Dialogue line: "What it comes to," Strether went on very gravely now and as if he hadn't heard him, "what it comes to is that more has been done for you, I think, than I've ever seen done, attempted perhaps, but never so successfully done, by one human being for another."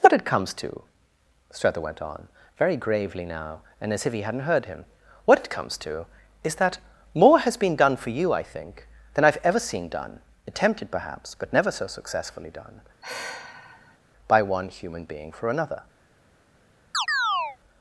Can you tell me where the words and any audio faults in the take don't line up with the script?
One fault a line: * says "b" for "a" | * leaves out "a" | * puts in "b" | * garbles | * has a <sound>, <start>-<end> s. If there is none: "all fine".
* has a sigh, 13.0-14.0 s
* has a chirp, 16.9-17.6 s